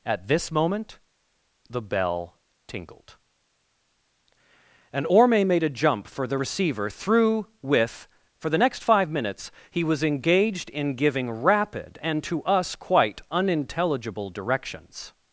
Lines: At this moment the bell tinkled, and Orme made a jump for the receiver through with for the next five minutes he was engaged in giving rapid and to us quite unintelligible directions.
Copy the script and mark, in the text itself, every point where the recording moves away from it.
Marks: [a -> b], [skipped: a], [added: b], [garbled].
At this moment the bell tinkled, and Orme made a jump for the receiver through with for the next five minutes he was engaged in giving rapid and to us quite unintelligible directions.